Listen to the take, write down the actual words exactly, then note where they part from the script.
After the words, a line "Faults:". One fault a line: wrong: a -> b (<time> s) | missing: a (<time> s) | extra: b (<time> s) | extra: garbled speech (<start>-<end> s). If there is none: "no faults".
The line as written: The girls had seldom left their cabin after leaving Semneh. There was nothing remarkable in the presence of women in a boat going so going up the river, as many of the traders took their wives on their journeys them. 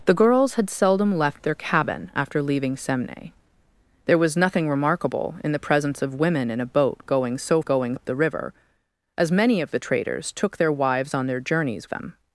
The girls had seldom left their cabin after leaving Semneh. There was nothing remarkable in the presence of women in a boat going so going up the river, as many of the traders took their wives on their journeys them.
Faults:
no faults